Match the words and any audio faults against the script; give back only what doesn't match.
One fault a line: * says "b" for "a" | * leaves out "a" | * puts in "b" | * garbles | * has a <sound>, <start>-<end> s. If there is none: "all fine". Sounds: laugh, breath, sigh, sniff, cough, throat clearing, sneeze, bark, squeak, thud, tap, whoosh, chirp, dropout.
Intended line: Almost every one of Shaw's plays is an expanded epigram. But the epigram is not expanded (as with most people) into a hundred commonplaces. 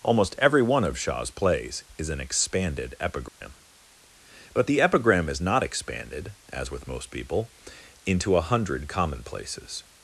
* has a dropout, 3.3-3.4 s